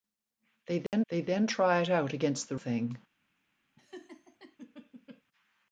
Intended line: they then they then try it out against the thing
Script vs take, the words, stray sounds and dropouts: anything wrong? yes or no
yes